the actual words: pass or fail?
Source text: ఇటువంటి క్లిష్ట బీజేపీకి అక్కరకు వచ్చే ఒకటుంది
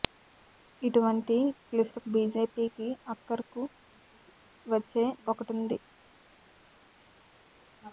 pass